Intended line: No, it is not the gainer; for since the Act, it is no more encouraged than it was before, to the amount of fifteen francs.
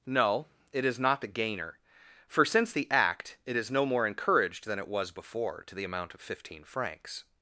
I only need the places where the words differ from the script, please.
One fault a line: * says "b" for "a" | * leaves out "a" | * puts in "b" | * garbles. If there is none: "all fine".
all fine